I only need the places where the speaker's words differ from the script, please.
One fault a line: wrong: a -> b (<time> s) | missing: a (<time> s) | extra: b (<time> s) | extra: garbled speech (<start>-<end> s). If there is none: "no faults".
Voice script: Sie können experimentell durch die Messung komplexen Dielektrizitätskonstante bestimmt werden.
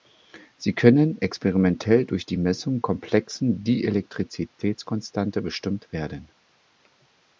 no faults